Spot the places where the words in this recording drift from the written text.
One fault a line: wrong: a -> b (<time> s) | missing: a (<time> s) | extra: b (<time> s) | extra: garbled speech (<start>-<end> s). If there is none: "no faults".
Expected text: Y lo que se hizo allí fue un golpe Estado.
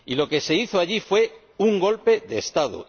extra: de (2.2 s)